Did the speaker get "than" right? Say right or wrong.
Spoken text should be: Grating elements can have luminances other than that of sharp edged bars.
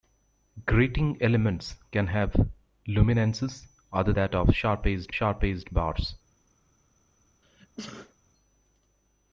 wrong